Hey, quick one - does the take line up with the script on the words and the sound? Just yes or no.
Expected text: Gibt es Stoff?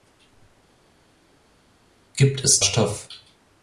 yes